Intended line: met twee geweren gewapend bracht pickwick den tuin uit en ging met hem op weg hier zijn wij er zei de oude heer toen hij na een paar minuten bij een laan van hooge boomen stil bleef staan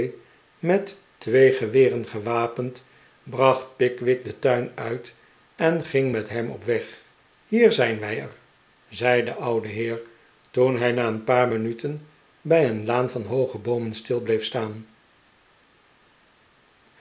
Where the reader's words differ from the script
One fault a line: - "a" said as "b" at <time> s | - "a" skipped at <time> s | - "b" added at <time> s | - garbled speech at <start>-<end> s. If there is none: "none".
none